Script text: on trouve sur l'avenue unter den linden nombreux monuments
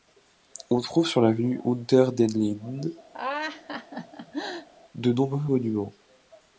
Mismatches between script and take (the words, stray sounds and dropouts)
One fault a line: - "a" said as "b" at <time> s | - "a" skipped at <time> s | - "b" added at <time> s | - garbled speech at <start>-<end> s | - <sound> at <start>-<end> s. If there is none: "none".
- laugh at 3.1-4.7 s
- "de" added at 4.9 s